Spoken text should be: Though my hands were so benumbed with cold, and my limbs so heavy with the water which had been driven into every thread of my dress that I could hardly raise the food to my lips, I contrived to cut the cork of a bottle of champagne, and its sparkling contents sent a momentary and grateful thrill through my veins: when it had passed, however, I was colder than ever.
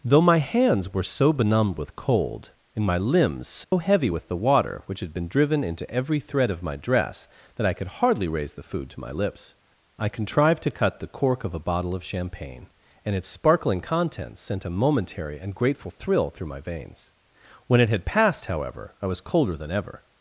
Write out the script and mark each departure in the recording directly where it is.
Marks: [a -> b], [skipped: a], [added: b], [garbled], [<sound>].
Though my hands were so benumbed with cold, and my limbs so [dropout] heavy with the water which had been driven into every thread of my dress that I could hardly raise the food to my lips, I contrived to cut the cork of a bottle of champagne, and its sparkling contents sent a momentary and grateful thrill through my veins: when it had passed, however, I was colder than ever.